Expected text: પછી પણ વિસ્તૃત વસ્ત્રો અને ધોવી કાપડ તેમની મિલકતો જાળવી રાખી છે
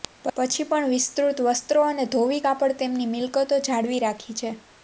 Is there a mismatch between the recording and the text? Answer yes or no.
no